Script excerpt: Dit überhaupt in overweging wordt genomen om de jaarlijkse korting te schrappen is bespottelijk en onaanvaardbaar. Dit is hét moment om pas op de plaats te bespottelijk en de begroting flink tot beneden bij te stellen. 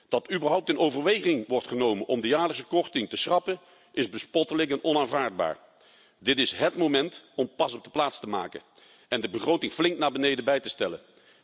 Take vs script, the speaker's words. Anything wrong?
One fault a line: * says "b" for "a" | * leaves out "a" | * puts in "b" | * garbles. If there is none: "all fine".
* says "Dat" for "Dit"
* says "maken" for "bespottelijk"
* says "naar" for "tot"